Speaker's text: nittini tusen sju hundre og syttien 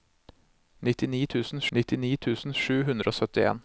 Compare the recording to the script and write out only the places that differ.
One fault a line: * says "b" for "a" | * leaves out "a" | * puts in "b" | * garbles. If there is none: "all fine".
* puts in "nittini tusen"